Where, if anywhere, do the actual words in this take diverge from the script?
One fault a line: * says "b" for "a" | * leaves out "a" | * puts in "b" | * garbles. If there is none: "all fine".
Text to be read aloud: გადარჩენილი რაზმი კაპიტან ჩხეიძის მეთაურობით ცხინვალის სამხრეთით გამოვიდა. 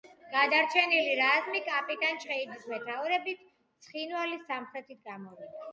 all fine